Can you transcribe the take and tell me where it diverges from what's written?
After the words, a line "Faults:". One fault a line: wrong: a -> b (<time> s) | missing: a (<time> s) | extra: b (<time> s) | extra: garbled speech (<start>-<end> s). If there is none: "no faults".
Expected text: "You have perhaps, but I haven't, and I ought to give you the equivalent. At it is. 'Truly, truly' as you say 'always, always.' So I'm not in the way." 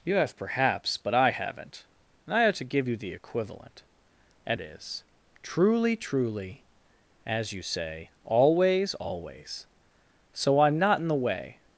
"You have perhaps, but I haven't, and I ought to give you the equivalent. At it is. 'Truly, truly' as you say 'always, always.' So I'm not in the way."
Faults:
no faults